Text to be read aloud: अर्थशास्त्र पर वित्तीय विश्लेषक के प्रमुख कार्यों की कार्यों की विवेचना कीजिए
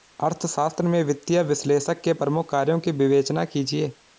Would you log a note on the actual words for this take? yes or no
yes